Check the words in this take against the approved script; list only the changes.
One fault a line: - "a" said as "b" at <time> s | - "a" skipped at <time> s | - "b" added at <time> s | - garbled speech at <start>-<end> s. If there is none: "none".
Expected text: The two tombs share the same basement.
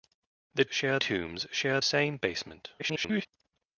- "two" said as "share" at 0.7 s
- "the" skipped at 1.8 s
- garbled speech at 2.8-3.3 s